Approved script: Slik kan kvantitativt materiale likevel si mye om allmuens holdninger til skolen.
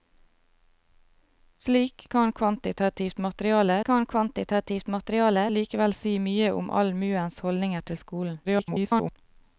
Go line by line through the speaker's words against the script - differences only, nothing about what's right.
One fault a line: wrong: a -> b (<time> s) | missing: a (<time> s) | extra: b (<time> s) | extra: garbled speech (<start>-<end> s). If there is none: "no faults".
extra: kan kvantitativt materiale (3.8 s)
extra: garbled speech (8.4-9.2 s)